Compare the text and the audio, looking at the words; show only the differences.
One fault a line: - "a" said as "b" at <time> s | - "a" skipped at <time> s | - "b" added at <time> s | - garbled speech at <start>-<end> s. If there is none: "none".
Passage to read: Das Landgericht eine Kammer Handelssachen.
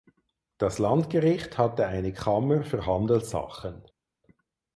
- "hatte" added at 1.6 s
- "für" added at 2.6 s